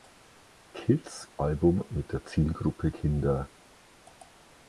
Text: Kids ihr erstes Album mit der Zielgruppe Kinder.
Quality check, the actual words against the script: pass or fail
fail